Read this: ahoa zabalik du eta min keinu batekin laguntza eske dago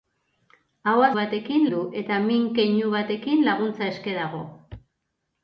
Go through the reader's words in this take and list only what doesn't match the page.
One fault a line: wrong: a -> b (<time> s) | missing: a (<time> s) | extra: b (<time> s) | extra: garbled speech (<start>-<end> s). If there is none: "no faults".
wrong: zabalik -> batekin (1.2 s)